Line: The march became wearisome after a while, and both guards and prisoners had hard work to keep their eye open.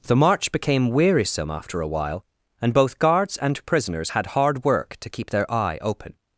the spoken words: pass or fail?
pass